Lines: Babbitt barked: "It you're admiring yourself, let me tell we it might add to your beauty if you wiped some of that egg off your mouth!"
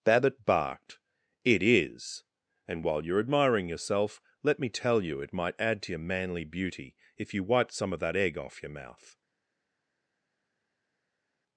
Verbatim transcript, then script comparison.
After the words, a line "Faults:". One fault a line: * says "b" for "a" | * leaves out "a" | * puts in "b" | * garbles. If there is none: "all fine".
Babbitt barked: "It is! And while you're admiring yourself, let me tell you it might add to your manly beauty if you wiped some of that egg off your mouth!"
Faults:
* puts in "is And while"
* says "you" for "we"
* puts in "manly"